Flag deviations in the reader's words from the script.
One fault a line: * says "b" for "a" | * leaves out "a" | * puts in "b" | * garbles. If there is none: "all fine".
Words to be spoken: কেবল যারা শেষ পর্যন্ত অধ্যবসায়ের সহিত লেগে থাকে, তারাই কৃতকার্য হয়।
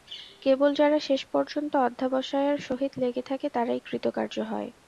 all fine